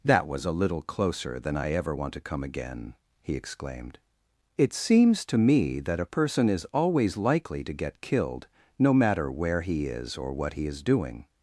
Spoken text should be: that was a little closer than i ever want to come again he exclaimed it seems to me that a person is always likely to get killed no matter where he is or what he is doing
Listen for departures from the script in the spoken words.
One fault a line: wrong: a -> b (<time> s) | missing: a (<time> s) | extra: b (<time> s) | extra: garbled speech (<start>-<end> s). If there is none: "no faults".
no faults